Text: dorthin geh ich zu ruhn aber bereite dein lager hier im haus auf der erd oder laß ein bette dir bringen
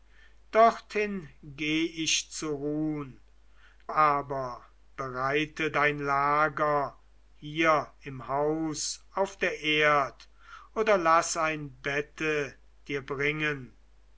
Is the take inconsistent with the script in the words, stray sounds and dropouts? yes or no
no